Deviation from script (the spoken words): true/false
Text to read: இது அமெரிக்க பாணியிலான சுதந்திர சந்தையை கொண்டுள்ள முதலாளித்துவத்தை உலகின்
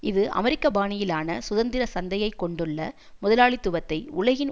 false